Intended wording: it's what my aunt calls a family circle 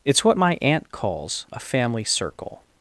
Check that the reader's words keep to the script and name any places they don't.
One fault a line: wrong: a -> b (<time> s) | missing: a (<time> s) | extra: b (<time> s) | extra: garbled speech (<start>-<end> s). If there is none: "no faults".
no faults